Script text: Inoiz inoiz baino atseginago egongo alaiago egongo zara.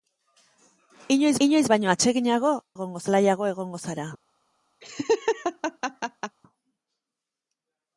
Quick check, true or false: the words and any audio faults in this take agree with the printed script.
false